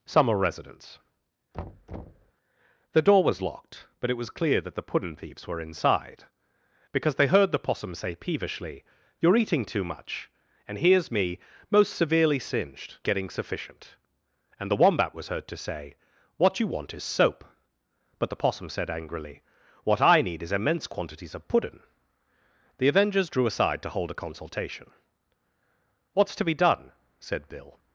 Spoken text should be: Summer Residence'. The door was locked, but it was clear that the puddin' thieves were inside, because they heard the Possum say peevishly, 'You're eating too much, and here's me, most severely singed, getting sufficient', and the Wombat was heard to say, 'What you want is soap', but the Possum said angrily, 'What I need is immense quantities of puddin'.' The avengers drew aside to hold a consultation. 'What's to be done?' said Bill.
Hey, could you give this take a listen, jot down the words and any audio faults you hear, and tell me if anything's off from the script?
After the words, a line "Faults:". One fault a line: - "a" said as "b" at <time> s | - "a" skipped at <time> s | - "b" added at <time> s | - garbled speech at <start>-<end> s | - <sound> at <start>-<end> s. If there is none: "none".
Summer Residence'. The door was locked, but it was clear that the puddin' thieves were inside, because they heard the Possum say peevishly, 'You're eating too much, and here's me, most severely singed, getting sufficient', and the Wombat was heard to say, 'What you want is soap', but the Possum said angrily, 'What I need is immense quantities of puddin'.' The avengers drew aside to hold a consultation. 'What's to be done?' said Bill.
Faults:
- thud at 1.5-2.3 s